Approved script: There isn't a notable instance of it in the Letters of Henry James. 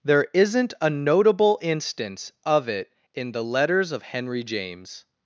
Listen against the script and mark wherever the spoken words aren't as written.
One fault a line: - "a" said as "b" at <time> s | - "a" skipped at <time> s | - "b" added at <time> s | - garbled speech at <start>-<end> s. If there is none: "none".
none